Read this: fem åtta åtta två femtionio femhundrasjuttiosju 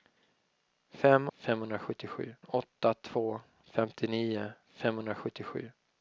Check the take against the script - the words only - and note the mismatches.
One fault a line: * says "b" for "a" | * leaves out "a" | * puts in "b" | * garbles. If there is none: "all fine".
* says "femhundrasjuttiosju" for "åtta"